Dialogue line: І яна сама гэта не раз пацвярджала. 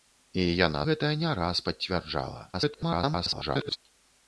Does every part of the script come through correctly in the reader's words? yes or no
no